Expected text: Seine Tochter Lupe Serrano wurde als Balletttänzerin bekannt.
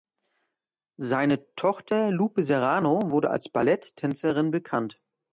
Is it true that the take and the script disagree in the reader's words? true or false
false